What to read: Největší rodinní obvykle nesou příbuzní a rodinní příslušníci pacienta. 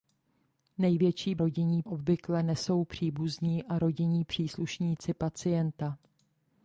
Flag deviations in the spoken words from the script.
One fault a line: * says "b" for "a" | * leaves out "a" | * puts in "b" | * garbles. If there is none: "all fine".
all fine